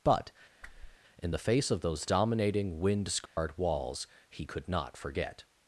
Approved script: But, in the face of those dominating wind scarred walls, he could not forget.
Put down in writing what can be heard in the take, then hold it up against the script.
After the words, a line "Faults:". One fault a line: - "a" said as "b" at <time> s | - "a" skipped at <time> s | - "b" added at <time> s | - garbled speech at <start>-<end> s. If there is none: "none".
But, in the face of those dominating wind scarred walls, he could not forget.
Faults:
none